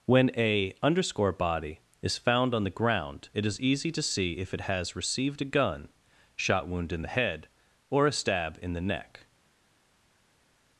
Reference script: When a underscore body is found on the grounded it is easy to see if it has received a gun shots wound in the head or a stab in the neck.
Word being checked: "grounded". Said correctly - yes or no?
no